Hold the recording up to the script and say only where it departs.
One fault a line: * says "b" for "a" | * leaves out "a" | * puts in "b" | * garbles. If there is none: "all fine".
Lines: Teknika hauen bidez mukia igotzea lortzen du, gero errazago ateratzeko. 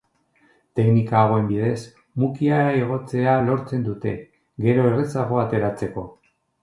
* says "dute" for "du"